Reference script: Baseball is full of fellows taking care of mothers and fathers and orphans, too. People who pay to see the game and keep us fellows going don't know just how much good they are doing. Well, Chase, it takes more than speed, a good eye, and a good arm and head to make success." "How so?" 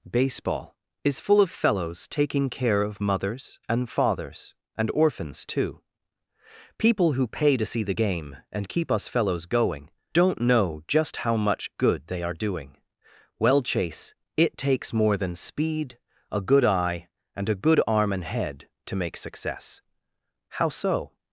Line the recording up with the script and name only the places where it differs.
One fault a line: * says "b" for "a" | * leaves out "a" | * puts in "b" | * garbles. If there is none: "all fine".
all fine